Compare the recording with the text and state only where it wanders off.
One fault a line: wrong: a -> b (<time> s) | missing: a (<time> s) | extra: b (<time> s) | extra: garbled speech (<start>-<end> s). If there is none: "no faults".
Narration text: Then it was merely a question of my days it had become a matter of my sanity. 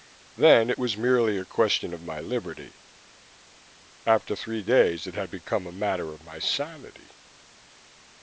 extra: liberty After three (2.2 s)